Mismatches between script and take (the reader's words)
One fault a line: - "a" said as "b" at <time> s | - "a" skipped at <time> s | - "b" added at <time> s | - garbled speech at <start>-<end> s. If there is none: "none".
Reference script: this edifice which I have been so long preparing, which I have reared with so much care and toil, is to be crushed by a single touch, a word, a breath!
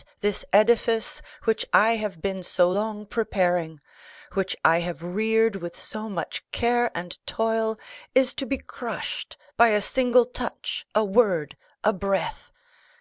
none